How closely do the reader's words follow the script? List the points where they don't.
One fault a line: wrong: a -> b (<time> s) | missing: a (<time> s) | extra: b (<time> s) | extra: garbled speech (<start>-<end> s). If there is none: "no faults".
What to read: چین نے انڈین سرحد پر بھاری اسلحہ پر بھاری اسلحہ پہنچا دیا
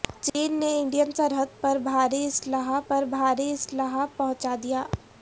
no faults